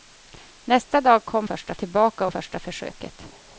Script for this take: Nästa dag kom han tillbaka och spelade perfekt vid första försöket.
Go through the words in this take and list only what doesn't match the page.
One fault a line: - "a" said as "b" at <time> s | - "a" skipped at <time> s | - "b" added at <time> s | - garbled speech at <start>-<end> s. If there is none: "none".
- "han" said as "första" at 1.4 s
- "spelade perfekt vid" skipped at 2.3 s